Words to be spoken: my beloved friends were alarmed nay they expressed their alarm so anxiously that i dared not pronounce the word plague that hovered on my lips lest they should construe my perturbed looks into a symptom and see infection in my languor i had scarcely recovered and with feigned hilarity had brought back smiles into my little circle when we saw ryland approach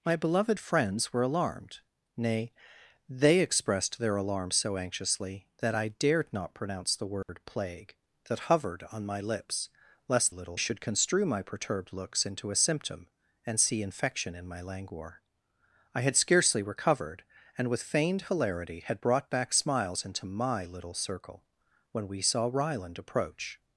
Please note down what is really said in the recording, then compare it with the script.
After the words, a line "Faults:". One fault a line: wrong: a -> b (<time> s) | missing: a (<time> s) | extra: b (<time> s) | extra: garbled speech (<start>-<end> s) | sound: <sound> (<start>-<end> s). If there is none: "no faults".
my beloved friends were alarmed nay they expressed their alarm so anxiously that i dared not pronounce the word plague that hovered on my lips lest little should construe my perturbed looks into a symptom and see infection in my languor i had scarcely recovered and with feigned hilarity had brought back smiles into my little circle when we saw ryland approach
Faults:
sound: dropout (7.2-7.3 s)
wrong: they -> little (10.3 s)